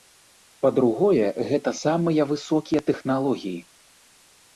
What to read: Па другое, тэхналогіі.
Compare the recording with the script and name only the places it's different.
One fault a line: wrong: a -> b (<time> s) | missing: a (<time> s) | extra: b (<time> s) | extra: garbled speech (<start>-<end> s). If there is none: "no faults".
extra: гэта самыя высокія (1.5 s)